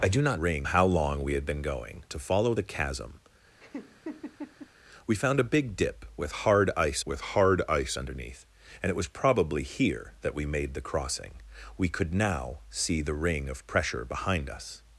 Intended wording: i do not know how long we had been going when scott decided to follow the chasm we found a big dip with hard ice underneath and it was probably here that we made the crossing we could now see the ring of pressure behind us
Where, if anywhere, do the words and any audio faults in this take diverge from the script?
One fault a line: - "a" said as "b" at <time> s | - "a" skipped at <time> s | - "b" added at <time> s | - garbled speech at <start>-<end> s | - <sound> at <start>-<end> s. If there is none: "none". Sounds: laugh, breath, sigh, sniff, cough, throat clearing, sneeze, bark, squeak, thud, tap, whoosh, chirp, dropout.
- "know" said as "ring" at 0.3 s
- "when scott decided" skipped at 2.0 s
- laugh at 3.6-4.7 s
- "with hard ice" added at 7.0 s